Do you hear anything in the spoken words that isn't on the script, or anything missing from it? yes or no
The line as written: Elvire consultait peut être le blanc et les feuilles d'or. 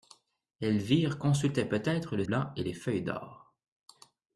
no